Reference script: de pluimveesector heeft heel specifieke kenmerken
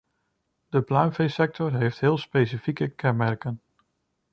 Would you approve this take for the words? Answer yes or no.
yes